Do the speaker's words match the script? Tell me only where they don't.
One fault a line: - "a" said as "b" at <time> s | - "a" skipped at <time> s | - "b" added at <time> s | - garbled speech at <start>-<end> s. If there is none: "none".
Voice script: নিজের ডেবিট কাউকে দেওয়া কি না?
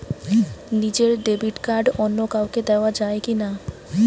- "কার্ড অন্য" added at 1.6 s
- "যায়" added at 3.0 s